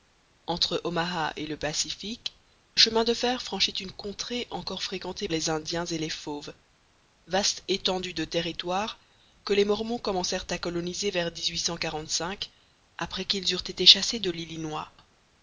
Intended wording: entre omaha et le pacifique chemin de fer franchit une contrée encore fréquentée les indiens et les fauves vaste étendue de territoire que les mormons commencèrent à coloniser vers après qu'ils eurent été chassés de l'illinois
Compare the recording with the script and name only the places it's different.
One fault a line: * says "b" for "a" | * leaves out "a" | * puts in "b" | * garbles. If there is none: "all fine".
all fine